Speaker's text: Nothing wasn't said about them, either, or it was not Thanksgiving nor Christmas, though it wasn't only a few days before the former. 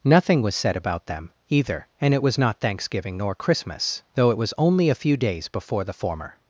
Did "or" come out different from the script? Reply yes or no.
yes